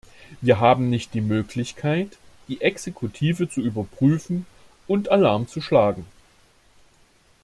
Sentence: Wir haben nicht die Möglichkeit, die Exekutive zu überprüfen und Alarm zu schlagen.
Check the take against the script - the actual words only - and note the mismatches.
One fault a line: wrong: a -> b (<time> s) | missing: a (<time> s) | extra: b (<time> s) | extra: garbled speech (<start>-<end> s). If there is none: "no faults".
no faults